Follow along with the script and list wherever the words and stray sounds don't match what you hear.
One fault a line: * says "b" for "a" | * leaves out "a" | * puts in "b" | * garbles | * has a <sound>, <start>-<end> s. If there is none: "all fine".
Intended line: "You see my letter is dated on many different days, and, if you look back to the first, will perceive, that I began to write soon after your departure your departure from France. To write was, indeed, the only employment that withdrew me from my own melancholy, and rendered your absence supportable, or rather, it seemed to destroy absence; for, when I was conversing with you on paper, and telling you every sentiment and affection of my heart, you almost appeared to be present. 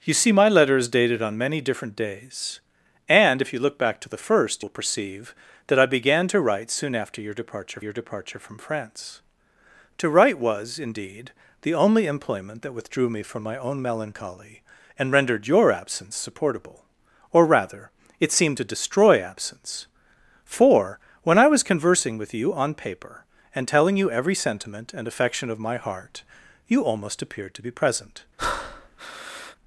* has a breath, 28.4-29.6 s